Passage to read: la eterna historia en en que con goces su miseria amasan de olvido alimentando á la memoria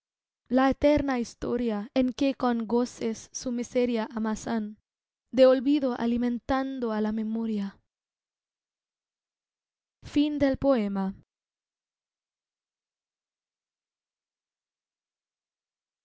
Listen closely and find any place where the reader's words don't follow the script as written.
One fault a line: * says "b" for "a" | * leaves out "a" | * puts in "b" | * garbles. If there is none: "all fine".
* leaves out "en"